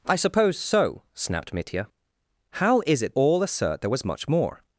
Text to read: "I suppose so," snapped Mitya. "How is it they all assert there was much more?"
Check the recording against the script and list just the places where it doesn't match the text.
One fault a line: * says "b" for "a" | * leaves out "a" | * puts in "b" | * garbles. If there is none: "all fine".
* leaves out "they"